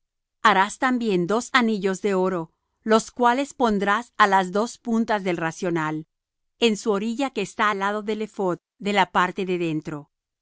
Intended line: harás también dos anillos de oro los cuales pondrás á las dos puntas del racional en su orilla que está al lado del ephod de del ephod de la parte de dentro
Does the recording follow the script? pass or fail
fail